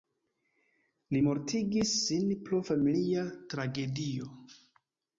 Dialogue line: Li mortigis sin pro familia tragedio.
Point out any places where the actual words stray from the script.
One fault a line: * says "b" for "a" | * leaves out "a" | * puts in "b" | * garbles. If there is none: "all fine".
all fine